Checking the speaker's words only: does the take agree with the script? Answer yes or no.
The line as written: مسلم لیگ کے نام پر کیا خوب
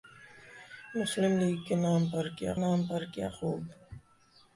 no